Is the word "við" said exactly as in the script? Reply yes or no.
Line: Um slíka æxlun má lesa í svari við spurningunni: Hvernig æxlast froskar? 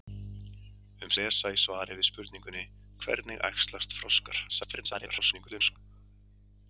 yes